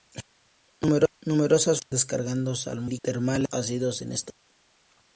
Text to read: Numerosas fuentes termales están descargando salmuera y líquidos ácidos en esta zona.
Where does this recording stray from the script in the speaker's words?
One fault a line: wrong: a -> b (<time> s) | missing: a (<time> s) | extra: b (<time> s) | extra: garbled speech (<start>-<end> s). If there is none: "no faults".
missing: fuentes termales están (1.8 s)
wrong: líquidos -> fuentes (3.0 s)